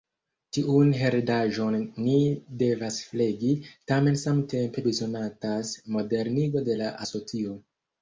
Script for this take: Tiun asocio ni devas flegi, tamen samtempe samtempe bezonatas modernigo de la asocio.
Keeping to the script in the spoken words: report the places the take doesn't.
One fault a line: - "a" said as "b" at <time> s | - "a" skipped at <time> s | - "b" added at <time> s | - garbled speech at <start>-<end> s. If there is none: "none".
- "asocio" said as "heredaĵon" at 1.0 s
- "samtempe" skipped at 4.9 s